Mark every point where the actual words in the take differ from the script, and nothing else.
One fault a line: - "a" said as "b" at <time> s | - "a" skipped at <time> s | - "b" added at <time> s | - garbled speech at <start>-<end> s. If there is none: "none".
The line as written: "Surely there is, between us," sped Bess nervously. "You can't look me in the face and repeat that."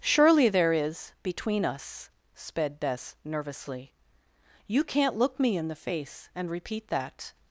none